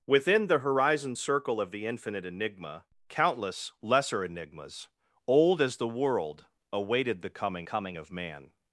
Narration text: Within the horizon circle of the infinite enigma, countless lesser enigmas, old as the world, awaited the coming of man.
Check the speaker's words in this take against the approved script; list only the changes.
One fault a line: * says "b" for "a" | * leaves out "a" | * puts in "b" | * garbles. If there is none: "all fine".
* puts in "coming"